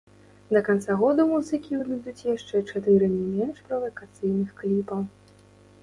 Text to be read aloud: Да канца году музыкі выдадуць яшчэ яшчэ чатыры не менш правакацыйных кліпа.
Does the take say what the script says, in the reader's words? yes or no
no